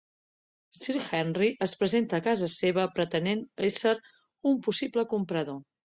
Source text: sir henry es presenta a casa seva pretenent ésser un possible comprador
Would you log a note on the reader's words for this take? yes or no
no